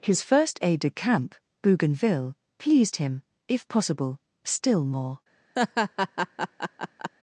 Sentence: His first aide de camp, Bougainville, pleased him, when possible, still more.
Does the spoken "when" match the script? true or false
false